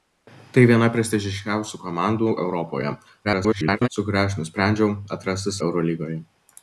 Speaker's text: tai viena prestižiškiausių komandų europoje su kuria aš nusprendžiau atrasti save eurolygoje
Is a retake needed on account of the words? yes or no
yes